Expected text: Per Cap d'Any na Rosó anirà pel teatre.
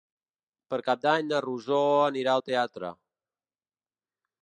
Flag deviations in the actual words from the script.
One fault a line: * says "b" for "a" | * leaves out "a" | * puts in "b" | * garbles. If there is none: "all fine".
* says "al" for "pel"